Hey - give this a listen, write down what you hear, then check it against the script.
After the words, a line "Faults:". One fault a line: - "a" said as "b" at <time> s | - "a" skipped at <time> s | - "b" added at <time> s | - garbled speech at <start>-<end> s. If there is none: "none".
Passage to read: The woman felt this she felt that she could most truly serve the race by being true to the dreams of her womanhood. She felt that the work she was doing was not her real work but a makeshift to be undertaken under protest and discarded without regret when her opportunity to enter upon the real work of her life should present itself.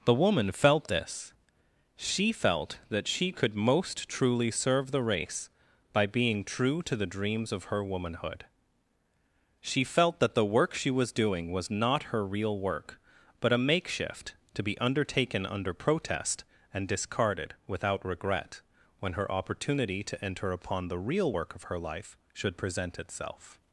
The woman felt this she felt that she could most truly serve the race by being true to the dreams of her womanhood. She felt that the work she was doing was not her real work but a makeshift to be undertaken under protest and discarded without regret when her opportunity to enter upon the real work of her life should present itself.
Faults:
none